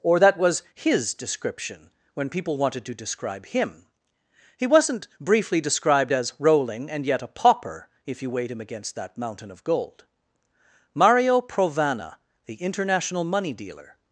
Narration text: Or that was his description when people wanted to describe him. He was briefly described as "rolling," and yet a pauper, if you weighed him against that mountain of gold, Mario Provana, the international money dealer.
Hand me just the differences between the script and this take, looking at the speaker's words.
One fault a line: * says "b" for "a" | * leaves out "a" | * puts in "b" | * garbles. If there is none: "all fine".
* says "wasn't" for "was"